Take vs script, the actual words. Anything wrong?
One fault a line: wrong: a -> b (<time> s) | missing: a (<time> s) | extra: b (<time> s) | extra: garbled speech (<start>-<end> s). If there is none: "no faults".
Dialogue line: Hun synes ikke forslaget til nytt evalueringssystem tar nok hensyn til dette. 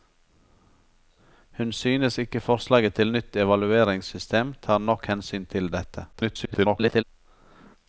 extra: garbled speech (6.1-7.0 s)